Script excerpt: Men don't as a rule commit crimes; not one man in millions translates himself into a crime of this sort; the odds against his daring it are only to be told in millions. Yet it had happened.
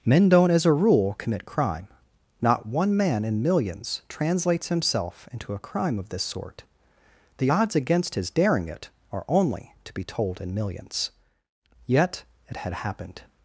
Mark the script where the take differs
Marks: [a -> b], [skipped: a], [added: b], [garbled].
Men don't as a rule commit [crimes; -> crime] not one man in millions translates himself into a crime of this sort; the odds against his daring it are only to be told in millions. Yet it had happened.